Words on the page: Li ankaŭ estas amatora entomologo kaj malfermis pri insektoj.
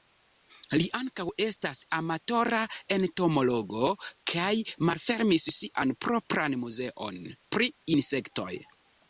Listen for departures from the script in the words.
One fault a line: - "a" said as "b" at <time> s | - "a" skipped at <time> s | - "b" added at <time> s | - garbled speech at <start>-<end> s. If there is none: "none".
- "sian propran muzeon" added at 5.6 s